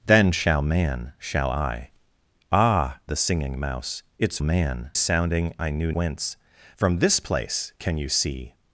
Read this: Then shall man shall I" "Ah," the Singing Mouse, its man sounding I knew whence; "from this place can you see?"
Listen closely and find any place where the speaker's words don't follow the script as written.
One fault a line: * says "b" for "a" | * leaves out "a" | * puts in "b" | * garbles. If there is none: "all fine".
all fine